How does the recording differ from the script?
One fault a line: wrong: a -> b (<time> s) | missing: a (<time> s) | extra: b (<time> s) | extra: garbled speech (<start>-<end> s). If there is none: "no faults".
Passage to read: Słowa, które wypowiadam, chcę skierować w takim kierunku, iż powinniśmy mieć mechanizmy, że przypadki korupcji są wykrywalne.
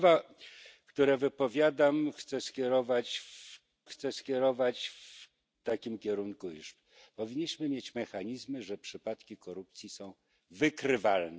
extra: chcę skierować w (3.8 s)